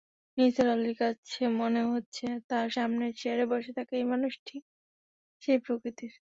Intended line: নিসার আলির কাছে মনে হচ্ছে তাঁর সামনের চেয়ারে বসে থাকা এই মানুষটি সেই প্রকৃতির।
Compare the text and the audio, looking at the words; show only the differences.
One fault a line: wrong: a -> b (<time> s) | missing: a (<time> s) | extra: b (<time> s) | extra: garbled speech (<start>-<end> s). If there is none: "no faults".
no faults